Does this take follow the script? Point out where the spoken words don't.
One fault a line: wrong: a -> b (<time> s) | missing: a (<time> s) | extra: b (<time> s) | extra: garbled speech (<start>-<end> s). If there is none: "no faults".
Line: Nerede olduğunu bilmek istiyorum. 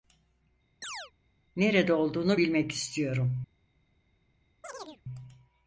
no faults